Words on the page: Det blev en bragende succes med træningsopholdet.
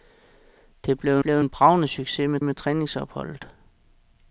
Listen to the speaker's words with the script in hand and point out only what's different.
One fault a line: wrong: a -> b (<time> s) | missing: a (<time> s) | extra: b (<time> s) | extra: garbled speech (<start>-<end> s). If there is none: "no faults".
extra: blev (1.2 s)
extra: med (2.4 s)